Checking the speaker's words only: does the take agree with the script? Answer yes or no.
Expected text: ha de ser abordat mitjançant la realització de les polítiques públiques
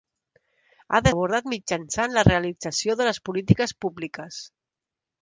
no